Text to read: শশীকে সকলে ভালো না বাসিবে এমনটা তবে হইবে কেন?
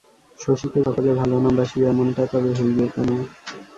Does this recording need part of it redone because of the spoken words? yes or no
no